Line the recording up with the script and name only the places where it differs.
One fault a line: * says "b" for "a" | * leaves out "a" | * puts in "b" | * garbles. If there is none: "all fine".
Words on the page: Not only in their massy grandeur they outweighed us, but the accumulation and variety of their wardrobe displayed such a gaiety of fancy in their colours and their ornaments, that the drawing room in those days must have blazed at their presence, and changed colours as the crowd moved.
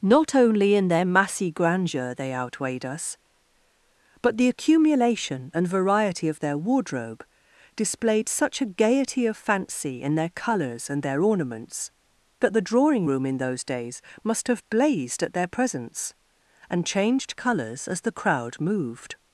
all fine